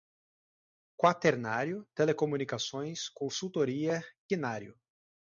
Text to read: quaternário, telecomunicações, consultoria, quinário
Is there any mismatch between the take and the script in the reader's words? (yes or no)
no